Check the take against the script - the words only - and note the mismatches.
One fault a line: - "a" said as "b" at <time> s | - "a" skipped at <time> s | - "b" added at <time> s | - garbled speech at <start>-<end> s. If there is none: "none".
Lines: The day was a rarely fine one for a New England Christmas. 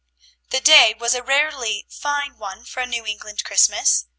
none